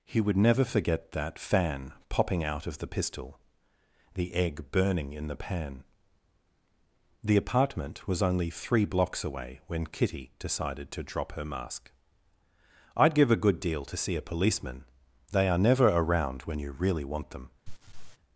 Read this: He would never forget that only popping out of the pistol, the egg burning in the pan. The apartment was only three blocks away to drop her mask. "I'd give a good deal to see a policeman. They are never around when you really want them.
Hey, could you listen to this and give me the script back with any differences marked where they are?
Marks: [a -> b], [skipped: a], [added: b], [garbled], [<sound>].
He would never forget that [only -> fan] popping out of the pistol, the egg burning in the pan. The apartment was only three blocks away [added: when Kitty decided] to drop her mask. "I'd give a good deal to see a policeman. They are never around when you really want them. [laugh]